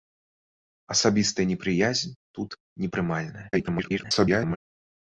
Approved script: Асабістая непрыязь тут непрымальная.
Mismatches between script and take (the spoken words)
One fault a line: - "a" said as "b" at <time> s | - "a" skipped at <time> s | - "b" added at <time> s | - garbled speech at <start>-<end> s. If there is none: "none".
- garbled speech at 3.5-4.6 s